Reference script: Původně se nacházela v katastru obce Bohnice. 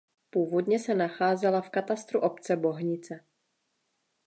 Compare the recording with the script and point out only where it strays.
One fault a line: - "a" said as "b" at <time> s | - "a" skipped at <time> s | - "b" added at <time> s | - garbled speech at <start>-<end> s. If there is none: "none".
none